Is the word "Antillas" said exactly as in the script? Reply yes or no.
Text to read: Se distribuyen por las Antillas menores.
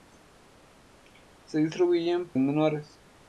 no